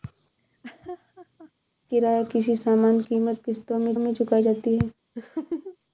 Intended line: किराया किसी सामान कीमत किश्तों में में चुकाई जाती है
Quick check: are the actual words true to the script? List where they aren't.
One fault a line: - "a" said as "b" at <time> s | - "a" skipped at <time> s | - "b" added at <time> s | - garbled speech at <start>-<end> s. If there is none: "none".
none